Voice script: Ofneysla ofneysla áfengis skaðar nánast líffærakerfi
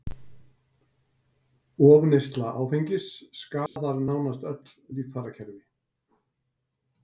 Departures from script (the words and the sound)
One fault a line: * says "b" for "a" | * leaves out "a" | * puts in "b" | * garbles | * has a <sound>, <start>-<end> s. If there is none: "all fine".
* leaves out "ofneysla"
* has a dropout, 3.7-3.8 s
* puts in "öll"